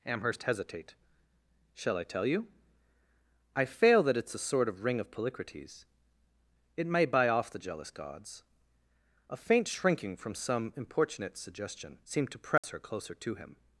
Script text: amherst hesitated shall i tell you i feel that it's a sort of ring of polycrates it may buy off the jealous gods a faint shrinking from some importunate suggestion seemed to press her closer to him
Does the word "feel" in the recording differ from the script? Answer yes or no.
yes